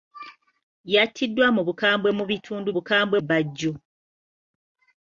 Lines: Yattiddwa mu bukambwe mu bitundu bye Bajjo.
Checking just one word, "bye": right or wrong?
wrong